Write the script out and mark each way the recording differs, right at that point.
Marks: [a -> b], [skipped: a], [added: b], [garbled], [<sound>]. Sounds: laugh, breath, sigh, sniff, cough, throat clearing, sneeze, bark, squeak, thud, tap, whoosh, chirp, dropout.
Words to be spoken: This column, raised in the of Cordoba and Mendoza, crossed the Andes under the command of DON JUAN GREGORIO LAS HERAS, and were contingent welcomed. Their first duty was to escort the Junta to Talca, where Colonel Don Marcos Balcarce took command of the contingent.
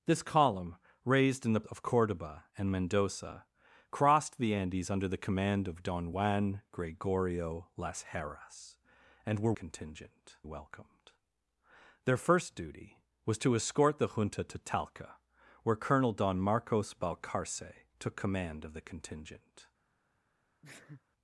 This column, raised in the of Cordoba and Mendoza, crossed the Andes under the command of DON JUAN GREGORIO LAS HERAS, and were contingent welcomed. Their first duty was to escort the Junta to Talca, where Colonel Don Marcos Balcarce took command of the contingent. [sneeze]